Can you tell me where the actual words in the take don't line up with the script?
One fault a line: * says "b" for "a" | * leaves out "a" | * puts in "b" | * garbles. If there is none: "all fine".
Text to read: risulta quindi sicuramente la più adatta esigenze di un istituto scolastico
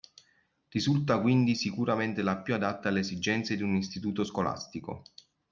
* puts in "alle"